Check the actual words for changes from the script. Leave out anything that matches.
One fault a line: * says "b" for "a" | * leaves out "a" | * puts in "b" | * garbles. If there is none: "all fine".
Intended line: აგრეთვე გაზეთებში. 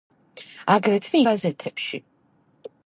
all fine